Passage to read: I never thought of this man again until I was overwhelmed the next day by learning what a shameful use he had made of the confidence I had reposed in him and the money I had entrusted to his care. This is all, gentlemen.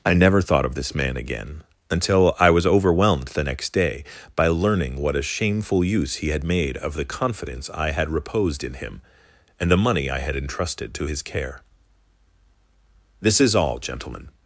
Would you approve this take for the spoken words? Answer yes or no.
yes